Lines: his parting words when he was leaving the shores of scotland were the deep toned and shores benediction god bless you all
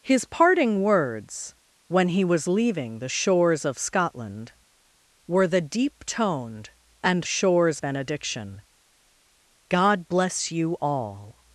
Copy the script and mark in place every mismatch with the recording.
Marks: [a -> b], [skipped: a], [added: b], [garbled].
his parting words when he was leaving the shores of scotland were the deep toned and shores benediction god bless you all